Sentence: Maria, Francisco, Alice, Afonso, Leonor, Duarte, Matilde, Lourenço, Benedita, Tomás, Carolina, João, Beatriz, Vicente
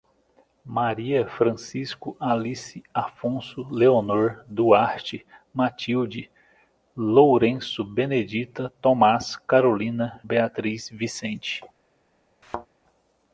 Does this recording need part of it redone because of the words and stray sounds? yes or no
yes